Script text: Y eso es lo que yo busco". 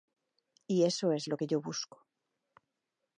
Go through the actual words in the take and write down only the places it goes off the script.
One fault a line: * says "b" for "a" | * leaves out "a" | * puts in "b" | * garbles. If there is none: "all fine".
all fine